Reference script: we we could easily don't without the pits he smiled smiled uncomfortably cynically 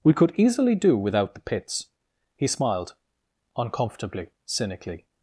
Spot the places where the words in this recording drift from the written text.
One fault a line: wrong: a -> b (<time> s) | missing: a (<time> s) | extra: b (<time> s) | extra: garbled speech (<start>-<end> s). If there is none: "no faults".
missing: we (0.1 s)
wrong: don't -> do (0.8 s)
missing: smiled (3.0 s)